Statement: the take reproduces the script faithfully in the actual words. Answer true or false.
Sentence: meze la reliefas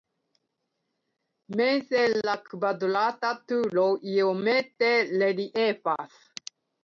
false